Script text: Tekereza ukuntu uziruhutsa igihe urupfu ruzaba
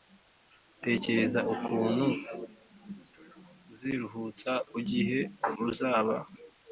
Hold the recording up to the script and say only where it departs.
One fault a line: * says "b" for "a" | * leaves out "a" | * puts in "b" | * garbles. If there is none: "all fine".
* leaves out "urupfu"